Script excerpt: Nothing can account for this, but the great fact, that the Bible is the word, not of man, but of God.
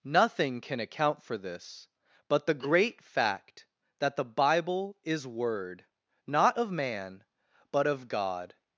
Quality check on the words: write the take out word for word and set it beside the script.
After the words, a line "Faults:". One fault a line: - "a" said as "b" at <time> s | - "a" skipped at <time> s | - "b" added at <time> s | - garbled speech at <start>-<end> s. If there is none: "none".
Nothing can account for this, but the great fact, that the Bible is word, not of man, but of God.
Faults:
- "the" skipped at 5.3 s